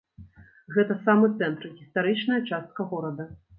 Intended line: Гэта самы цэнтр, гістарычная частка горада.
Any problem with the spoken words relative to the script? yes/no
no